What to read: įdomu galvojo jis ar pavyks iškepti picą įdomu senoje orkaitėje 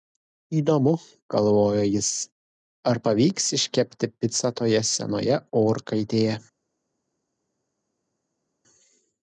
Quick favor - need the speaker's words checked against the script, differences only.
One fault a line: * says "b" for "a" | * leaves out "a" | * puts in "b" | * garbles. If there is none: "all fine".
* says "toje" for "įdomu"